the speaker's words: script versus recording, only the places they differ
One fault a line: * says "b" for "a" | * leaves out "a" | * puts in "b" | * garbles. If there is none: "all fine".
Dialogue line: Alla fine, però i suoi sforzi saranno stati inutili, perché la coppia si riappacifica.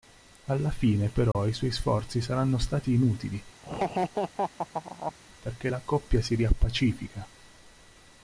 all fine